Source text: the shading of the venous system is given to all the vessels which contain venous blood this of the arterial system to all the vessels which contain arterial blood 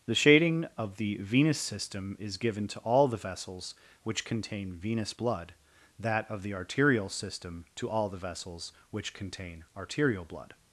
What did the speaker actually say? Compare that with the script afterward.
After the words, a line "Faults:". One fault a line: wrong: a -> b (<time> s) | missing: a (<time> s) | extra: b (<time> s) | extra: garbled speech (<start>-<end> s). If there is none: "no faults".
the shading of the venous system is given to all the vessels which contain venous blood that of the arterial system to all the vessels which contain arterial blood
Faults:
wrong: this -> that (6.0 s)